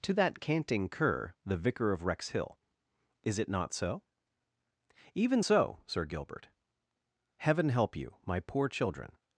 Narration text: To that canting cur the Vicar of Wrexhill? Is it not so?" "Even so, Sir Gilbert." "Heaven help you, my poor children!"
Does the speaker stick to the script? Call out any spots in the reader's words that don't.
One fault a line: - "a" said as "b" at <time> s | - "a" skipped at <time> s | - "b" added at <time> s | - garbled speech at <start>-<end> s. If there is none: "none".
none